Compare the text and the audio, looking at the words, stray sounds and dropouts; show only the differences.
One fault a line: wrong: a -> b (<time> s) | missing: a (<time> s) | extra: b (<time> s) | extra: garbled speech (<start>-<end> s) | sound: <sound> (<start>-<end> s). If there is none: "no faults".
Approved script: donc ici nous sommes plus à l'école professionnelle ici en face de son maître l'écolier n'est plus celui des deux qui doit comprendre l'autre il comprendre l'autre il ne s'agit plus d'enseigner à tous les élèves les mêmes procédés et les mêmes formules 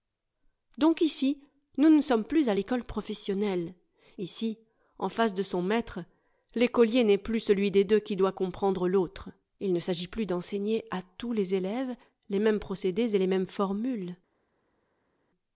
extra: ne (1.9 s)
missing: comprendre l'autre il (9.7 s)